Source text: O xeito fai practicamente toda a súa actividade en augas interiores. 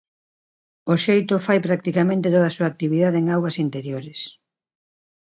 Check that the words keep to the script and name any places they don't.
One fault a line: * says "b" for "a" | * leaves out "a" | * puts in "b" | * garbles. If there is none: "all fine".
all fine